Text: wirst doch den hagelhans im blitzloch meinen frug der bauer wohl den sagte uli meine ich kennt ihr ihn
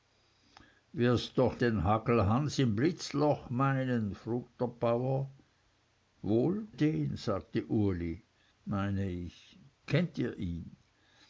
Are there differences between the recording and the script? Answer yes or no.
no